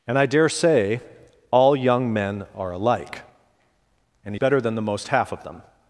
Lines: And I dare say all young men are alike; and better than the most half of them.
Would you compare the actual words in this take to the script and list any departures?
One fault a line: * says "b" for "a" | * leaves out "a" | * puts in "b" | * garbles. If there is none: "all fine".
all fine